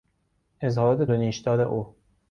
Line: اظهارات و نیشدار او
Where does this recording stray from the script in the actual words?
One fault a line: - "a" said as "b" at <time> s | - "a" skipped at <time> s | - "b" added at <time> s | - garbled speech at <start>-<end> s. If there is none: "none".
none